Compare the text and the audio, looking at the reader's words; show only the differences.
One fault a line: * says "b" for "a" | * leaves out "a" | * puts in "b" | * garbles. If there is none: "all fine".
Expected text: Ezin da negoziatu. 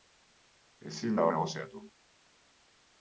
all fine